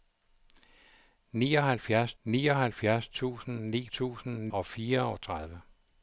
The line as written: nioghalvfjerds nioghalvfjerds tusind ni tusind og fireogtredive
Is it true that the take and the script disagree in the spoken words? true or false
false